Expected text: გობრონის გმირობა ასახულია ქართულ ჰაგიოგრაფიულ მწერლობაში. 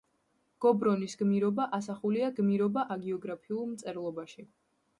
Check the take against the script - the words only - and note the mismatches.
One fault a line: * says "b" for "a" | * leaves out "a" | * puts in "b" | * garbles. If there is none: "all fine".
* says "გმირობა" for "ქართულ"